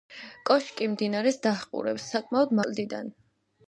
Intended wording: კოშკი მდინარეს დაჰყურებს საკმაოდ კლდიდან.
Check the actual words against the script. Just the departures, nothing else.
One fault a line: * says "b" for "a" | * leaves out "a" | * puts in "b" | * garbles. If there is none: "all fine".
all fine